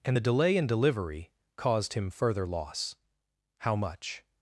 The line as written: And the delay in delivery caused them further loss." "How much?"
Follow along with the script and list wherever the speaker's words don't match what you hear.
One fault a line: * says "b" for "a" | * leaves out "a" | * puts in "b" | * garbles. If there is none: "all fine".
* says "him" for "them"